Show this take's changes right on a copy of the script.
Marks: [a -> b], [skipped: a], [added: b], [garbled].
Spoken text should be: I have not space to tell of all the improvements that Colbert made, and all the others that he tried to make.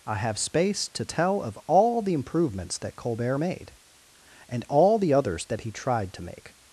I have [skipped: not] space to tell of all the improvements that Colbert made, and all the others that he tried to make.